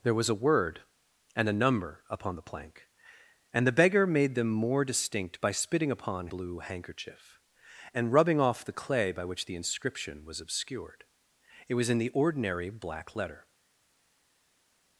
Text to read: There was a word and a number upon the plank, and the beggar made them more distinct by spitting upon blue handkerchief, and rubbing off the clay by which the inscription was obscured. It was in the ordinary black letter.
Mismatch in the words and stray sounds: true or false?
false